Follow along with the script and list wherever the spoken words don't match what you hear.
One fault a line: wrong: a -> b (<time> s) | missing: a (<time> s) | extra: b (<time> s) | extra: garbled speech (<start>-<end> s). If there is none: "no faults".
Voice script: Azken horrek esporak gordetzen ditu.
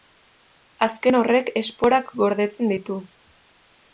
no faults